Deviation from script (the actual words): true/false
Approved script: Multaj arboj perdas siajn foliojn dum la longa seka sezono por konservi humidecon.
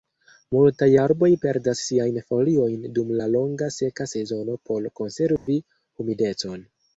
false